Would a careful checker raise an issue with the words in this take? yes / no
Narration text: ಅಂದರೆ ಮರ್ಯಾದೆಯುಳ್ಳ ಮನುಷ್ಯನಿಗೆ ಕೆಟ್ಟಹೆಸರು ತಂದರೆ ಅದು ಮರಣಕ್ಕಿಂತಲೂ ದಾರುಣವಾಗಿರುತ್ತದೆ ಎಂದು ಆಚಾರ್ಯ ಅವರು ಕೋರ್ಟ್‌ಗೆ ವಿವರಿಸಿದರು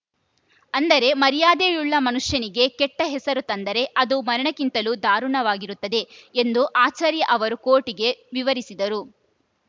no